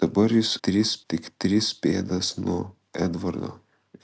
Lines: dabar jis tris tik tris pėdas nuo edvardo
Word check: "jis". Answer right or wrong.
right